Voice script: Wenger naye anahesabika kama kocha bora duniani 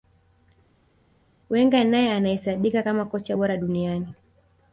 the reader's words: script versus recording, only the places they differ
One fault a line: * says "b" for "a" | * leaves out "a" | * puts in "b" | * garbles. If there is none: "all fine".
all fine